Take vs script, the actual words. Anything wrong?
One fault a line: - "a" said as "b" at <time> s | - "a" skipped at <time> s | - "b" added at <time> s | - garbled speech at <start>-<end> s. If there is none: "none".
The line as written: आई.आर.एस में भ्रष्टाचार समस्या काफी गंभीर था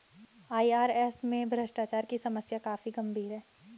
- "की" added at 2.0 s
- "था" said as "है" at 3.3 s